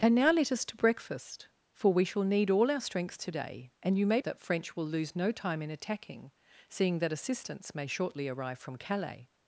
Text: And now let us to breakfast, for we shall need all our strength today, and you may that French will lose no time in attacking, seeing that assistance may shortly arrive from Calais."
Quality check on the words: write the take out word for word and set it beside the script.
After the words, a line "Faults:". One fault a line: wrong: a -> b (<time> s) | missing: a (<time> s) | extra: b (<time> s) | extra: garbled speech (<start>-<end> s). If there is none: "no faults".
And now let us to breakfast, for we shall need all our strength today, and you may that French will lose no time in attacking, seeing that assistance may shortly arrive from Calais."
Faults:
no faults